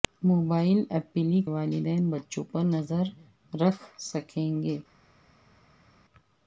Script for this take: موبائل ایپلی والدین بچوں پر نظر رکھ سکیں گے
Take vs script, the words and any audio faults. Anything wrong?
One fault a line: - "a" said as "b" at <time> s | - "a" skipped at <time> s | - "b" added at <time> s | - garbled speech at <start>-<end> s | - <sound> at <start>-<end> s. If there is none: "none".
none